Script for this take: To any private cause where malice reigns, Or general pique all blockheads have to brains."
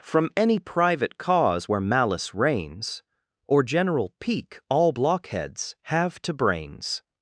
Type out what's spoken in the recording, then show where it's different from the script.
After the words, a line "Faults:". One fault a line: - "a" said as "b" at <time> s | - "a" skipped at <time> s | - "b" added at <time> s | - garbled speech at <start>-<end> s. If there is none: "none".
From any private cause where malice reigns, Or general pique all blockheads have to brains."
Faults:
- "To" said as "From" at 0.0 s